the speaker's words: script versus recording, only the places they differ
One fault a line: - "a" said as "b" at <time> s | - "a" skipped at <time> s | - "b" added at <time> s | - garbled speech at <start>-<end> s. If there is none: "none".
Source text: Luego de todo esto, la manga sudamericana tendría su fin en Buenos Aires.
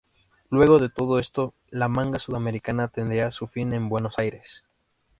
none